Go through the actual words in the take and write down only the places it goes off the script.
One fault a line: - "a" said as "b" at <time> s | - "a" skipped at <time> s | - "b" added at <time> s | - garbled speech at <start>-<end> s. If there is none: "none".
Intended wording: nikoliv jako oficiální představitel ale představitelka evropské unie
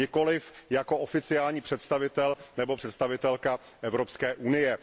- "ale" said as "nebo" at 2.6 s